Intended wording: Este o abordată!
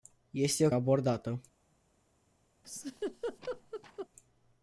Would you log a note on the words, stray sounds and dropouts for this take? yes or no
yes